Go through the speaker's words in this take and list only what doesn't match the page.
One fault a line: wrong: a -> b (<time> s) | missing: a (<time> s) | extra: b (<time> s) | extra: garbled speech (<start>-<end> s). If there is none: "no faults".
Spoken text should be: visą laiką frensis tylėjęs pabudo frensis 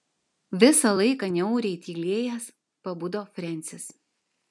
wrong: frensis -> niauriai (1.4 s)